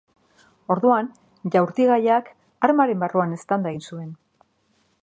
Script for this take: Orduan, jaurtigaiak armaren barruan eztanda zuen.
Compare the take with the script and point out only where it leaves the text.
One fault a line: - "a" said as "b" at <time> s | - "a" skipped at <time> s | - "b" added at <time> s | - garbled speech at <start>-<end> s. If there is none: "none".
- "egin" added at 3.7 s